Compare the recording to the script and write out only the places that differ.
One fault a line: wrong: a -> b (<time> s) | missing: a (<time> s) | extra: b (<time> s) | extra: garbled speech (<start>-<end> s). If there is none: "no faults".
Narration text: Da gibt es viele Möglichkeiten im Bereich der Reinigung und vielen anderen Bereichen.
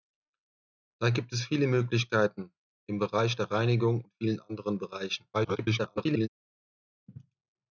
extra: garbled speech (5.3-6.3 s)